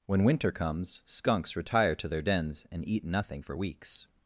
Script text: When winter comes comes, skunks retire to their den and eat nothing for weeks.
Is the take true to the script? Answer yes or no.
no